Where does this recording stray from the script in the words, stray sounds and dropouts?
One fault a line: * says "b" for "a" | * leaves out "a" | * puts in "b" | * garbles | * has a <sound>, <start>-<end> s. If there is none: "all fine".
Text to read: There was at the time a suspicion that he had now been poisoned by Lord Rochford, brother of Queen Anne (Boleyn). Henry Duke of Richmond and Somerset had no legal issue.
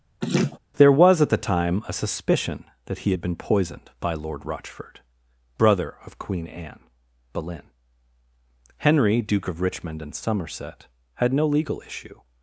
* has a laugh, 0.2-0.6 s
* leaves out "now"